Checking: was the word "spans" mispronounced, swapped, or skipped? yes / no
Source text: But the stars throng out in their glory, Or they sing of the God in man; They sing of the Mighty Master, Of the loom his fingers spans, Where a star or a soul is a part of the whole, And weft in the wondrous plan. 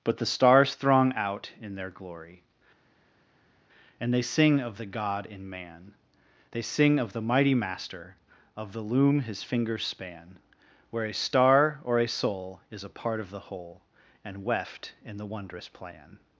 yes